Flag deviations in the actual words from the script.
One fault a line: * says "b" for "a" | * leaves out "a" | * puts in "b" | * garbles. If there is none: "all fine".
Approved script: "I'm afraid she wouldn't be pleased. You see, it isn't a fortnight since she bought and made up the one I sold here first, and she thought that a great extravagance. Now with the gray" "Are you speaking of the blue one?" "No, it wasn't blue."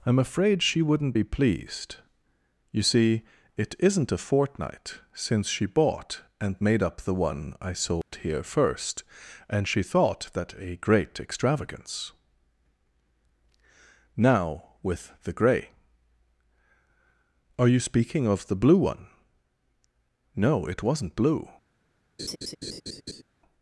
all fine